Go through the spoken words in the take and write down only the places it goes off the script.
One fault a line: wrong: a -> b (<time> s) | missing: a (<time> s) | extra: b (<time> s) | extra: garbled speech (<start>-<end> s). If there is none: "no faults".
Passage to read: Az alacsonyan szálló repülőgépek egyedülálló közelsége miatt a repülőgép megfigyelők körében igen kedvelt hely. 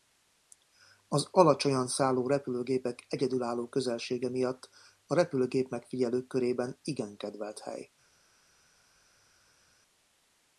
no faults